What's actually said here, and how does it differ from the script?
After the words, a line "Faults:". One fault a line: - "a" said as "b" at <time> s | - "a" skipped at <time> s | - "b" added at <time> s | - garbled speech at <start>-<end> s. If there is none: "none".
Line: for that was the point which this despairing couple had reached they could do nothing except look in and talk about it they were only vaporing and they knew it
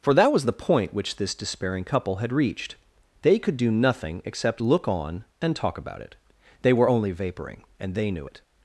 for that was the point which this despairing couple had reached they could do nothing except look on and talk about it they were only vaporing and they knew it
Faults:
- "in" said as "on" at 4.9 s